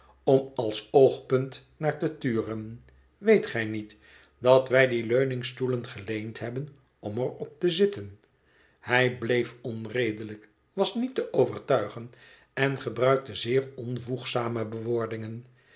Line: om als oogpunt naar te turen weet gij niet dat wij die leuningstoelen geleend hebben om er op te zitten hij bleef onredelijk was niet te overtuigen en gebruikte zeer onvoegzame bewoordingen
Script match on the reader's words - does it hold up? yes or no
yes